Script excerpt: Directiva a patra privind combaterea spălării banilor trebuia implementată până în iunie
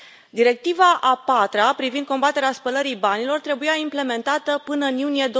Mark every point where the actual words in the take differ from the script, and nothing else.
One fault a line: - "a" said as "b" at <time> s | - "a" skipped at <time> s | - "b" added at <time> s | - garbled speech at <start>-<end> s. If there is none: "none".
none